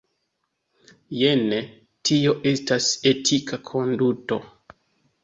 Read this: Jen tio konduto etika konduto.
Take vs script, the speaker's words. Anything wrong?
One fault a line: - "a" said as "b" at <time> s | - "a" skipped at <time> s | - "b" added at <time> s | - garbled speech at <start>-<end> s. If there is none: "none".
- "konduto" said as "estas" at 2.5 s